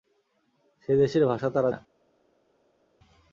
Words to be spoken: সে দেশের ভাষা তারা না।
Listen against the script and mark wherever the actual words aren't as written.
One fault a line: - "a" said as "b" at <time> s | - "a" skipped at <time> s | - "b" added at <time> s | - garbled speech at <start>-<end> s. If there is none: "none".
none